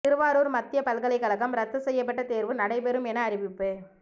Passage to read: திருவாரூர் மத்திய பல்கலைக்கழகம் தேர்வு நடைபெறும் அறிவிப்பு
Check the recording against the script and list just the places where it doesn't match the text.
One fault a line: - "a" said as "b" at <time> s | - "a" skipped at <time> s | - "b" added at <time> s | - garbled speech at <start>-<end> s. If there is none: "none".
- "ரத்து செய்யப்பட்ட" added at 1.6 s
- "என" added at 3.1 s